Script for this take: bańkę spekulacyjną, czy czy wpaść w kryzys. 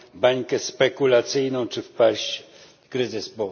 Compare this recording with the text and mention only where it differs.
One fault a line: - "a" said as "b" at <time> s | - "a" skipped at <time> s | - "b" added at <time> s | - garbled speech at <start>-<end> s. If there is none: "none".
- "czy" skipped at 1.8 s